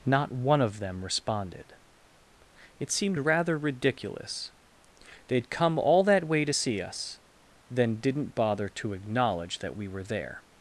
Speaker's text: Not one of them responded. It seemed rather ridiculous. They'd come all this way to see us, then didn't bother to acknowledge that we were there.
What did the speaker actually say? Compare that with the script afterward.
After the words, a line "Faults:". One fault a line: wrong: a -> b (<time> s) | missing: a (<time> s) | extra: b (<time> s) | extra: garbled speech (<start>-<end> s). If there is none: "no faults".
Not one of them responded. It seemed rather ridiculous. They'd come all that way to see us, then didn't bother to acknowledge that we were there.
Faults:
wrong: this -> that (6.0 s)